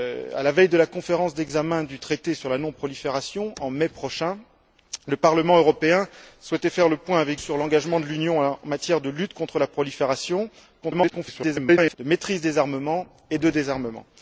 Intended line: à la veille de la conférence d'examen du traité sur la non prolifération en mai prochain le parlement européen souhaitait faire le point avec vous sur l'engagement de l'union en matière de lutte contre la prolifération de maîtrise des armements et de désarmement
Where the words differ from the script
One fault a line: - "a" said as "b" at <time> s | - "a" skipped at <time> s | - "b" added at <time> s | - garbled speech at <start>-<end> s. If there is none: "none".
- "vous" skipped at 7.4 s
- garbled speech at 10.8-11.9 s